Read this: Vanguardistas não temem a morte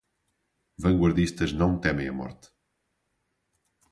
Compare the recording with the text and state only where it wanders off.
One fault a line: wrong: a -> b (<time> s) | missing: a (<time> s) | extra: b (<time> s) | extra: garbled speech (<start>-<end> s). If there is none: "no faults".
no faults